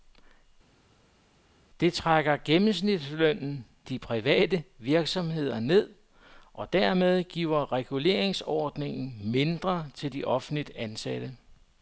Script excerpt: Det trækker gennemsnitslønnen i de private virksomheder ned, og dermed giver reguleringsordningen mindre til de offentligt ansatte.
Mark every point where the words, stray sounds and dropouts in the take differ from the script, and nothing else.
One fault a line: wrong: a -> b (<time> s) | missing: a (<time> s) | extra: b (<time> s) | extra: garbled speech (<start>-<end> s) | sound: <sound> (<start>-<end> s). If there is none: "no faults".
missing: i (3.7 s)